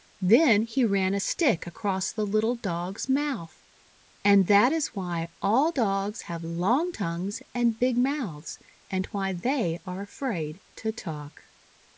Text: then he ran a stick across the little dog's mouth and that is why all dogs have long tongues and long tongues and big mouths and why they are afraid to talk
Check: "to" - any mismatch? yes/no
no